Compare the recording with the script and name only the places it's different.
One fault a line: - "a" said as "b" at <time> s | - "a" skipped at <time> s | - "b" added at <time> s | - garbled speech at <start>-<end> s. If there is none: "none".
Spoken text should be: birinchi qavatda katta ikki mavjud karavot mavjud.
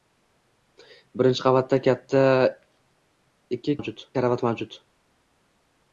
none